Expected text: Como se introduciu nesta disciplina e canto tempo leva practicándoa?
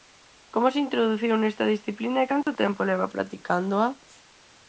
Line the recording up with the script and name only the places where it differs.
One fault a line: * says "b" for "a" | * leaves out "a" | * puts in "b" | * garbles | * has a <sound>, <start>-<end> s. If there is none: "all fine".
* has a dropout, 2.4-2.5 s